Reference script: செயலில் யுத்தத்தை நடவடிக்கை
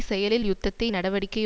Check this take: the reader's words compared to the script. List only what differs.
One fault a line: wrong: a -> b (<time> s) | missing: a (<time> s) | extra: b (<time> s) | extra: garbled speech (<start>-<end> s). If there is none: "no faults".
no faults